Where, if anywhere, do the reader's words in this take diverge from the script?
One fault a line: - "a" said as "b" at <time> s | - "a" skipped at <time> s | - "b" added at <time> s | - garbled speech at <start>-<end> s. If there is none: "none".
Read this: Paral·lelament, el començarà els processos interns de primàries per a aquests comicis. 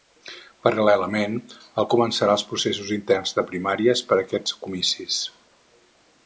none